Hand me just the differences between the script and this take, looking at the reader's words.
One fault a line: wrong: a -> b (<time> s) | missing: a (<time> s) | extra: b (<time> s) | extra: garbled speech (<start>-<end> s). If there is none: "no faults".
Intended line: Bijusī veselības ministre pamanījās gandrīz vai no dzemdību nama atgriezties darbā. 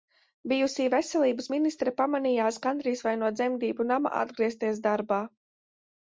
no faults